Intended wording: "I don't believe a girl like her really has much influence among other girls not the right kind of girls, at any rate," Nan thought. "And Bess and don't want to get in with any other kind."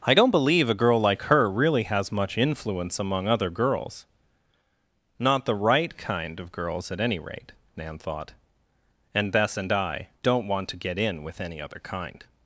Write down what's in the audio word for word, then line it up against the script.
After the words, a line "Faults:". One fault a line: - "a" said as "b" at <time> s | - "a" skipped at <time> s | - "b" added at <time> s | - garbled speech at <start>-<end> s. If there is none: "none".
"I don't believe a girl like her really has much influence among other girls not the right kind of girls, at any rate," Nan thought. "And Bess and I don't want to get in with any other kind."
Faults:
- "I" added at 9.7 s